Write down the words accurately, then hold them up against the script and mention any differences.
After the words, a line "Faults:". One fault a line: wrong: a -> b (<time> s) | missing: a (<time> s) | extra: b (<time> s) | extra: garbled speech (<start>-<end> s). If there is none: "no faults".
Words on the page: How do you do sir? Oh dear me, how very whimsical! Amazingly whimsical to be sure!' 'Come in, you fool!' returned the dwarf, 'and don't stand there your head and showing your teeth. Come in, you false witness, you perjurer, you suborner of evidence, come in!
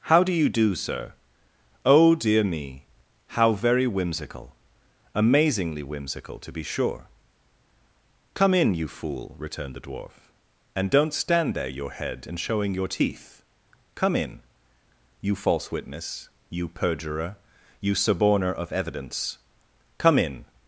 How do you do sir? Oh dear me, how very whimsical! Amazingly whimsical to be sure!' 'Come in, you fool!' returned the dwarf, 'and don't stand there your head and showing your teeth. Come in, you false witness, you perjurer, you suborner of evidence, come in!
Faults:
no faults